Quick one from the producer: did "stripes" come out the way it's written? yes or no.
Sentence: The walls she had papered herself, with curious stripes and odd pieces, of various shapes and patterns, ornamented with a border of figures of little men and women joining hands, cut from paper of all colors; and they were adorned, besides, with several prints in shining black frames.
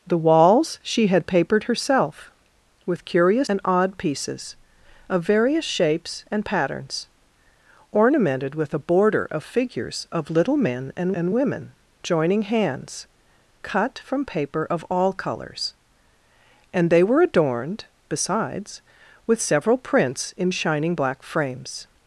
no